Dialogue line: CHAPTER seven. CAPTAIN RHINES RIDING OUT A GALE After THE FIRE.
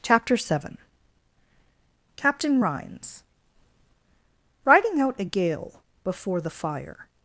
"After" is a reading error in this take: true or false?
true